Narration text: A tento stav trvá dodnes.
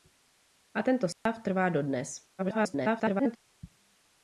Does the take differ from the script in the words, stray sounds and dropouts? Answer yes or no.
yes